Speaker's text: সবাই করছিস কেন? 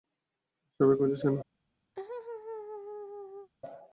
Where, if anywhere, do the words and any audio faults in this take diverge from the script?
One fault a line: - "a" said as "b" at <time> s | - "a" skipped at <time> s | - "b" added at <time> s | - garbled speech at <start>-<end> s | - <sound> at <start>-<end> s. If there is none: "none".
- laugh at 2.0-3.5 s